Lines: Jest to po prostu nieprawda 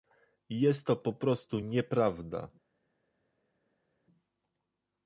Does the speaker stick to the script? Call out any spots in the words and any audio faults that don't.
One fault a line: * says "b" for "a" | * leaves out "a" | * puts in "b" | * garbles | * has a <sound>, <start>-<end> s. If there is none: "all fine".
all fine